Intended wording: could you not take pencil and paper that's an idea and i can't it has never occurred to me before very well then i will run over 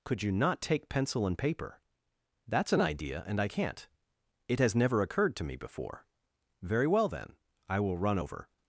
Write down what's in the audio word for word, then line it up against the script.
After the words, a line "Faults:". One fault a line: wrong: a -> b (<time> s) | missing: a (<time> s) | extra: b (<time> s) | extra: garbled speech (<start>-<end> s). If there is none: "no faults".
could you not take pencil and paper that's an idea and i can't it has never occurred to me before very well then i will run over
Faults:
no faults